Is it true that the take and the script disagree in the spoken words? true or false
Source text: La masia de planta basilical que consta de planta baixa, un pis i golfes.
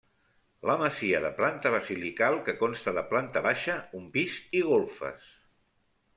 false